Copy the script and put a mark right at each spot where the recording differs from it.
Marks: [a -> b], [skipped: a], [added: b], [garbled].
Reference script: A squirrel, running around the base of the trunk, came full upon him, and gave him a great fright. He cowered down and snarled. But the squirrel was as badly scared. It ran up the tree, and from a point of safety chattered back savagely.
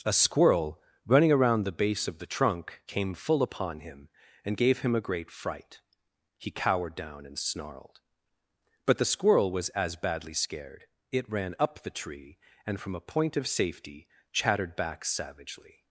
A squirrel, running around the base of the trunk, came full upon him, and gave him a great fright. He cowered down and snarled. But the squirrel was as badly scared. It ran up the tree, and from a point of safety chattered back savagely.